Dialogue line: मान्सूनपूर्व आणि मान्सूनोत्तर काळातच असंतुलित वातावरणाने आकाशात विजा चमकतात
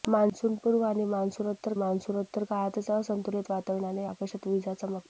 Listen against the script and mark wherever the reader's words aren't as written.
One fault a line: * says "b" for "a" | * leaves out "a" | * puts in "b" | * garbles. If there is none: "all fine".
* puts in "मान्सूनोत्तर"